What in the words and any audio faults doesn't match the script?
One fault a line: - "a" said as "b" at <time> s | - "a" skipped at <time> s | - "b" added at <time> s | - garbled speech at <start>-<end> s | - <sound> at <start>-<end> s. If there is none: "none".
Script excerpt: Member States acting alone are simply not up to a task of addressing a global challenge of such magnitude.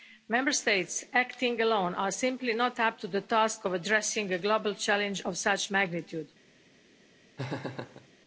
- "a" said as "the" at 3.1 s
- laugh at 7.4-8.1 s